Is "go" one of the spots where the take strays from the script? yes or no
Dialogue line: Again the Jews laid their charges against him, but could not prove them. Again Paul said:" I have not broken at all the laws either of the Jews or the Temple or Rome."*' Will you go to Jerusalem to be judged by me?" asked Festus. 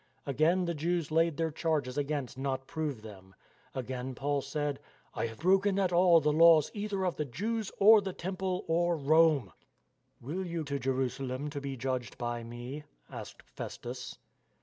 yes